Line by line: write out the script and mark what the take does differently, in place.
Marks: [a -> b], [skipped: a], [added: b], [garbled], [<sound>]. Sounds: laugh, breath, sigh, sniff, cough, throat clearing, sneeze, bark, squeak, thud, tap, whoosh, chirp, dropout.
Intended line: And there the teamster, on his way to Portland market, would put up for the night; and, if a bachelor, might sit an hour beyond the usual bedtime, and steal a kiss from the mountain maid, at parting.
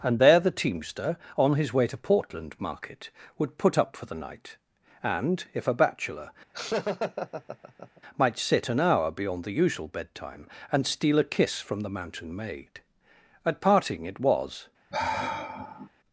And there the teamster, on his way to Portland market, would put up for the night; and, if a bachelor, [laugh] might sit an hour beyond the usual bedtime, and steal a kiss from the mountain maid, at parting. [added: It was] [sigh]